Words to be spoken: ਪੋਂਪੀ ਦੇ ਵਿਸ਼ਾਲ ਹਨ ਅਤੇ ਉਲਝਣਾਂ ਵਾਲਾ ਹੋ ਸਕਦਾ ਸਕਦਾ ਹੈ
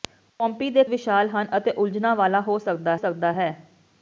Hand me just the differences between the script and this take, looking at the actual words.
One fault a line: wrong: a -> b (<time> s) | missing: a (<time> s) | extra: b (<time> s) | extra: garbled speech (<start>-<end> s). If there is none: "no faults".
no faults